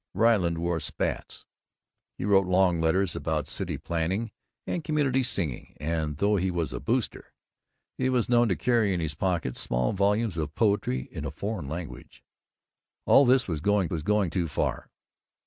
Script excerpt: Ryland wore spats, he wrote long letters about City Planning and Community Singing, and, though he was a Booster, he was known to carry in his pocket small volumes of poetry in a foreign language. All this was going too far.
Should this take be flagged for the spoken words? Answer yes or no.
yes